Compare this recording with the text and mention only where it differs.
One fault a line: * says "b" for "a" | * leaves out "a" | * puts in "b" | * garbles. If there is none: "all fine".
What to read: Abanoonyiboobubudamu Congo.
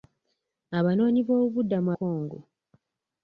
all fine